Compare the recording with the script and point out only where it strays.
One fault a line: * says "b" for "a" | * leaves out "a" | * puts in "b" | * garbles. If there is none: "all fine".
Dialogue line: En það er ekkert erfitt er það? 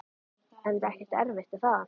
* leaves out "það"